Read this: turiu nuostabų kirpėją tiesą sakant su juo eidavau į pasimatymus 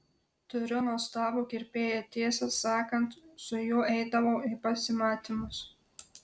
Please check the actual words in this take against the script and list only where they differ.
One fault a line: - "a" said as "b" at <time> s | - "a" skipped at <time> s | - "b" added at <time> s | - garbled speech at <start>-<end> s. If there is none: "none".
none